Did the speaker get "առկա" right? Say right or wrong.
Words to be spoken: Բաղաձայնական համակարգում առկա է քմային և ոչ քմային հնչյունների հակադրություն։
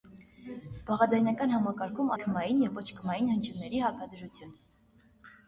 wrong